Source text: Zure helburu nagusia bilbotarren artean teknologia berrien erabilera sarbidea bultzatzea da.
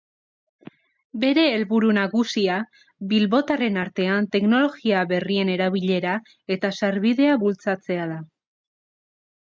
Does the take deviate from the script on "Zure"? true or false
true